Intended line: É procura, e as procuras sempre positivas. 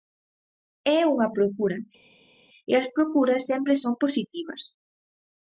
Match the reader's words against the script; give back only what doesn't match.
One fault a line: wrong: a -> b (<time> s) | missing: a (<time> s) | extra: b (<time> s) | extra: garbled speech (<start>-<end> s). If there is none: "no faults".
extra: unha (1.1 s)
extra: son (3.8 s)